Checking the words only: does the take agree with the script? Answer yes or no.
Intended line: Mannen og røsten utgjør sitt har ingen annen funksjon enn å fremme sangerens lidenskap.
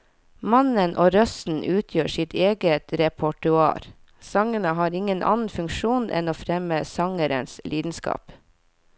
no